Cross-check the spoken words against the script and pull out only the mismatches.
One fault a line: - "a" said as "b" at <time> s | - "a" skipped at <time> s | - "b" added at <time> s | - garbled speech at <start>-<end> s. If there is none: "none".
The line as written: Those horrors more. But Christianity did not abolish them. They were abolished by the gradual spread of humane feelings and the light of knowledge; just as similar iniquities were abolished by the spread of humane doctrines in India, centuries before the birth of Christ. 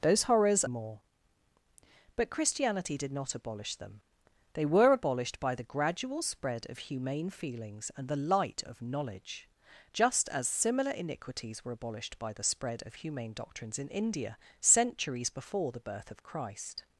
none